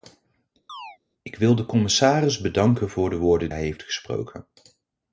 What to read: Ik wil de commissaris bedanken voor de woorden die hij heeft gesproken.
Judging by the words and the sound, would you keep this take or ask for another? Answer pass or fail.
fail